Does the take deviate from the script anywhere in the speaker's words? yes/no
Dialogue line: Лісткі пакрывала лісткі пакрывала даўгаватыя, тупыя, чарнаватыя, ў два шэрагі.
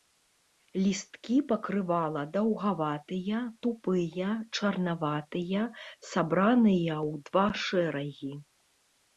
yes